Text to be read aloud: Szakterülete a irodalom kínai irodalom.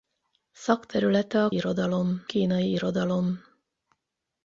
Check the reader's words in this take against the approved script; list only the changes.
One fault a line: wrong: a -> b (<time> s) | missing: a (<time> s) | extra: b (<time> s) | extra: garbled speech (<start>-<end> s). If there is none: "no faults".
no faults